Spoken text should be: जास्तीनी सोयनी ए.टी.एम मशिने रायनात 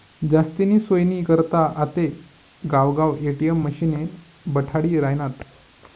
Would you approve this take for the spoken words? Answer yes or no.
no